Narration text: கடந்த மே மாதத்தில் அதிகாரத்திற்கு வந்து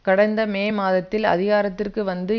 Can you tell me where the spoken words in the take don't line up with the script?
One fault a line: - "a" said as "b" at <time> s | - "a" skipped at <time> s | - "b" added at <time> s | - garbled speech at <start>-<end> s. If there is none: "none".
none